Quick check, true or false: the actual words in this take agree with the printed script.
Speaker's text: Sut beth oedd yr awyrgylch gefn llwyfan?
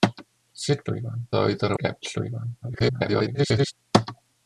false